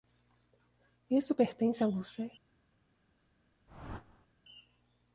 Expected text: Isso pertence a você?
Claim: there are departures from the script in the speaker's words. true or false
false